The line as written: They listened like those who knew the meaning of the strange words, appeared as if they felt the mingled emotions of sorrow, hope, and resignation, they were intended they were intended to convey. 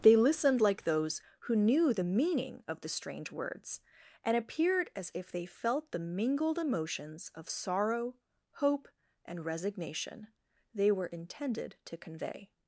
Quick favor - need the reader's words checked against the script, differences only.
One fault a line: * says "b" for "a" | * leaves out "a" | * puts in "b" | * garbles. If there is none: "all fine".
* puts in "and"
* leaves out "they were intended"